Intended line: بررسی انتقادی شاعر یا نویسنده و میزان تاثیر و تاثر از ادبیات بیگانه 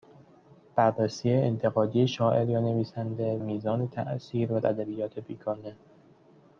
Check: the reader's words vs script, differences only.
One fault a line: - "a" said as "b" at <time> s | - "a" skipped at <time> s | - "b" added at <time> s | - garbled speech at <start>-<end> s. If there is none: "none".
- "و" skipped at 3.4 s
- "تاثر از" skipped at 4.6 s